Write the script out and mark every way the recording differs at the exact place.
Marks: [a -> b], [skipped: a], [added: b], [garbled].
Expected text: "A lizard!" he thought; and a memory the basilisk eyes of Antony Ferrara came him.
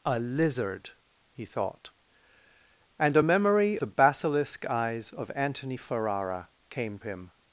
"A lizard!" he thought; and a memory the basilisk eyes of Antony Ferrara came him.